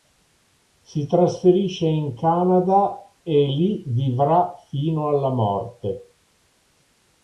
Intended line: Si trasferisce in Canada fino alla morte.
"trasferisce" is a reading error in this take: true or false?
false